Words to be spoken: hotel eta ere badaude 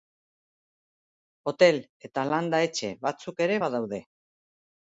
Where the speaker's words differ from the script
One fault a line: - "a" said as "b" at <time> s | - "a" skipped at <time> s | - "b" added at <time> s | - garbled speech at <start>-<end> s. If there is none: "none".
- "landa etxe batzuk" added at 2.3 s